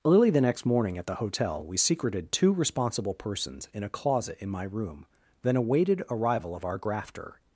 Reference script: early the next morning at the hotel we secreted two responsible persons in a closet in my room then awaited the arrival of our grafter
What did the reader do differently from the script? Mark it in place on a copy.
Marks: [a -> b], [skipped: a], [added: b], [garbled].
early the next morning at the hotel we secreted two responsible persons in a closet in my room then awaited [skipped: the] arrival of our grafter